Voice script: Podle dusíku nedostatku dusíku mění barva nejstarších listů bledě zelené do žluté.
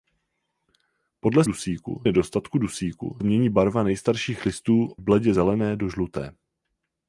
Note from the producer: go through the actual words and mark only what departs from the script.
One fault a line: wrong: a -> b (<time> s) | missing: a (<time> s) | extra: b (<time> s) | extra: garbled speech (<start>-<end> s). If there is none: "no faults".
no faults